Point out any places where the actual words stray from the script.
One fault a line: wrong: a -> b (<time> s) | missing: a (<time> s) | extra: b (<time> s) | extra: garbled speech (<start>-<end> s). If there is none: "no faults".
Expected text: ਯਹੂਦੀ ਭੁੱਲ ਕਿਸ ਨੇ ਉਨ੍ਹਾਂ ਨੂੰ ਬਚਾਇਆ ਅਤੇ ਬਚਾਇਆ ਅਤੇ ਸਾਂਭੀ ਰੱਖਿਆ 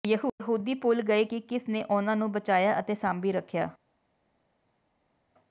extra: ਗਏ ਕਿ (1.0 s)
missing: ਬਚਾਇਆ ਅਤੇ (2.9 s)